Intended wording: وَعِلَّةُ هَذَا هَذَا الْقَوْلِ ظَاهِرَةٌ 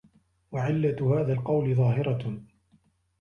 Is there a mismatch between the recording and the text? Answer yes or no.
yes